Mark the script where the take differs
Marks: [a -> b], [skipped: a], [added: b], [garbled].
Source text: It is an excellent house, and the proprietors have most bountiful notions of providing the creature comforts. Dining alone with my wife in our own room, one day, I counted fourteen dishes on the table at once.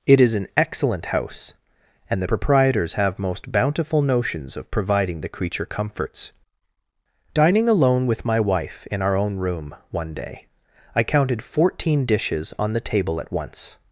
It is an excellent house, and the proprietors have most bountiful notions of providing the creature comforts. Dining alone with my wife in our own room, one day, I counted fourteen dishes on the table at once.